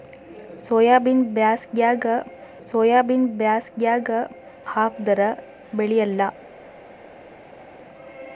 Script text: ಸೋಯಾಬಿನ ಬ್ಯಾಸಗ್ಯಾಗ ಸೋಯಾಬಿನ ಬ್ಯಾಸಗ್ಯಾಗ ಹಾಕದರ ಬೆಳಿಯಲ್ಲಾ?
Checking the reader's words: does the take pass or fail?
pass